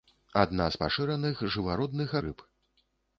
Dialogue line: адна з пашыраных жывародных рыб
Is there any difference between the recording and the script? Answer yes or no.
no